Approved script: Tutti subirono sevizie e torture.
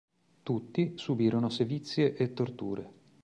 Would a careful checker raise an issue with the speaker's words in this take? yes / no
no